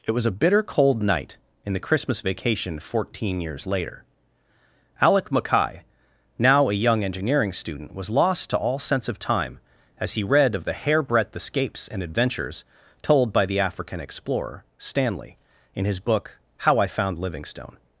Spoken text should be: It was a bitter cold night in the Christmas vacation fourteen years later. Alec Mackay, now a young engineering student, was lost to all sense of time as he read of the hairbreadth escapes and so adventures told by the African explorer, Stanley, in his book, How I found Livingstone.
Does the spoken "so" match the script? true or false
false